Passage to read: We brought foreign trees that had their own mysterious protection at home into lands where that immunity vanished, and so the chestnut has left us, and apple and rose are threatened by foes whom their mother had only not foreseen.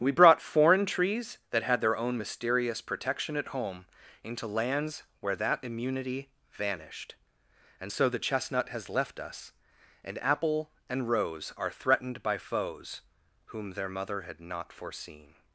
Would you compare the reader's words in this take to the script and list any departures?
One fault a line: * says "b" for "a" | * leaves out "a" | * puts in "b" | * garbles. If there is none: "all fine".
* leaves out "only"